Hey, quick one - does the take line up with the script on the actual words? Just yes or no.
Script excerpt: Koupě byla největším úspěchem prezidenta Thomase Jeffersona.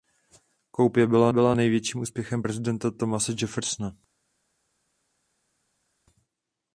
no